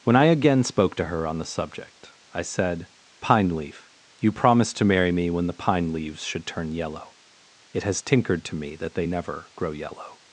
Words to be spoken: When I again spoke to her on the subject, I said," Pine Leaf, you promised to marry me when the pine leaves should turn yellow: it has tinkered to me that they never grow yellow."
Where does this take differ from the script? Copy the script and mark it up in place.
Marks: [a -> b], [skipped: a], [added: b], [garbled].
When I again spoke to her on the subject, I said," Pine Leaf, you promised to marry me when the pine leaves should turn yellow: it has tinkered to me that they never grow yellow."